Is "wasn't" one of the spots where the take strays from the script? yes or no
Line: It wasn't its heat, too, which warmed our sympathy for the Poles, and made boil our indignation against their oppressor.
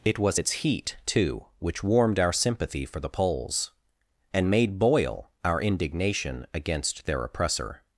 yes